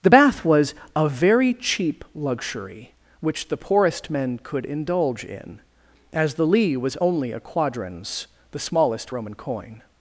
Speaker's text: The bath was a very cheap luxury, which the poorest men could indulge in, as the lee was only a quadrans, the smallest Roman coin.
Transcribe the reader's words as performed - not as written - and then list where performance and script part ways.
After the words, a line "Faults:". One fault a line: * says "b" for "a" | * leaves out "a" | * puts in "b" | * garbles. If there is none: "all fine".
The bath was a very cheap luxury, which the poorest men could indulge in, as the lee was only a quadrans, the smallest Roman coin.
Faults:
all fine